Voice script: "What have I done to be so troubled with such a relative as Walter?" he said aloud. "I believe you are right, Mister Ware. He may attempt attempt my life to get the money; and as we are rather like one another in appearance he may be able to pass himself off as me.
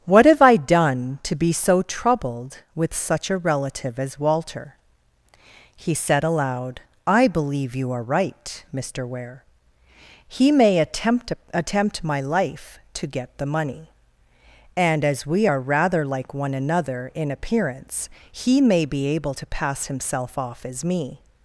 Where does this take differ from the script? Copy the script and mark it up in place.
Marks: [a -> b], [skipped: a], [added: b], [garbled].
"What have I done to be so troubled with such a relative as Walter?" he said aloud. "I believe you are right, Mister Ware. He may attempt attempt my life to get the money; and as we are rather like one another in appearance he may be able to pass himself off as me.